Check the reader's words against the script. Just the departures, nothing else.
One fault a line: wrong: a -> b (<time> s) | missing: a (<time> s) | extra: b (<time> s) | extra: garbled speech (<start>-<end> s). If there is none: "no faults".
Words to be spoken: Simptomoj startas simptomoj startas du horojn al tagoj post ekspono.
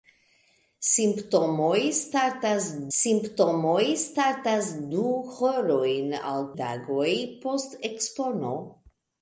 no faults